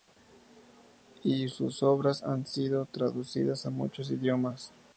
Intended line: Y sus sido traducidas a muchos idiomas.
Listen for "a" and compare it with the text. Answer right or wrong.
right